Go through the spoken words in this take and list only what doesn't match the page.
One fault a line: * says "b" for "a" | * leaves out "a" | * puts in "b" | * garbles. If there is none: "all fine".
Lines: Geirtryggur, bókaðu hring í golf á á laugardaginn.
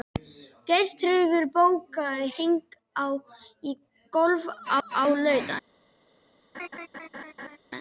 all fine